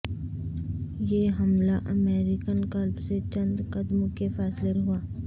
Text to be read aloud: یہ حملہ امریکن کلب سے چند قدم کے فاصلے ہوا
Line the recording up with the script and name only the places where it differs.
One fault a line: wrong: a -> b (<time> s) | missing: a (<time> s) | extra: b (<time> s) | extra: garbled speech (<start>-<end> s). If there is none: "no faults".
no faults